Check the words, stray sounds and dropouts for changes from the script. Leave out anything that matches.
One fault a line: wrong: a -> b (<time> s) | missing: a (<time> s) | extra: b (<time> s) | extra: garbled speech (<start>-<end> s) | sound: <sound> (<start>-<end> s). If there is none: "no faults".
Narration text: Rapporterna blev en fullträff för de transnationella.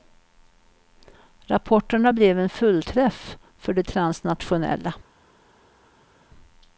no faults